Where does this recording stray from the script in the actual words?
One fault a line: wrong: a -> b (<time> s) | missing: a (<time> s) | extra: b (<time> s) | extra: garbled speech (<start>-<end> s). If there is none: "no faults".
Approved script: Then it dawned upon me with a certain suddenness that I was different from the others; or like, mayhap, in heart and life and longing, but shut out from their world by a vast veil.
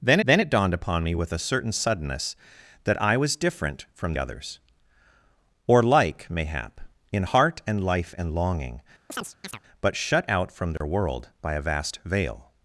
extra: then (0.2 s)
missing: the (4.1 s)